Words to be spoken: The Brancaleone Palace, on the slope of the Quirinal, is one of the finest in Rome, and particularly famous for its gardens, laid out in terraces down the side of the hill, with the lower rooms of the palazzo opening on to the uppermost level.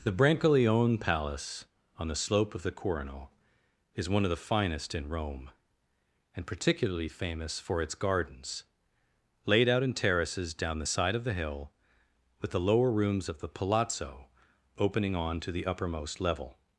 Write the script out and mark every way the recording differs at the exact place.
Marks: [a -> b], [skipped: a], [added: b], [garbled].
The Brancaleone Palace, on the slope of the Quirinal, is one of the finest in Rome, and particularly famous for its gardens, laid out in terraces down the side of the hill, with the lower rooms of the palazzo opening on to the uppermost level.